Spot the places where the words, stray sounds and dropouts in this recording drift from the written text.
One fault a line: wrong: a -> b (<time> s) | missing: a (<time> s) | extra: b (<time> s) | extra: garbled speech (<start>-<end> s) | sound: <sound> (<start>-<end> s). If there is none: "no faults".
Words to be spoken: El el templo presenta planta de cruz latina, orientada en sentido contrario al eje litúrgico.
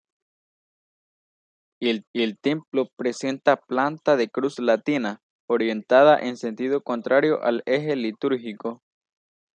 no faults